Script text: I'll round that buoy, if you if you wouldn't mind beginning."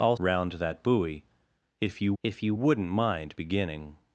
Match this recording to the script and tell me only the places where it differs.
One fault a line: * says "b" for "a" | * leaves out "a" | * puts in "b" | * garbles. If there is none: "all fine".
all fine